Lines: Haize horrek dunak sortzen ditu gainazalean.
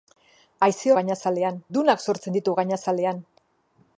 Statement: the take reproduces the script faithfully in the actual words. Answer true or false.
false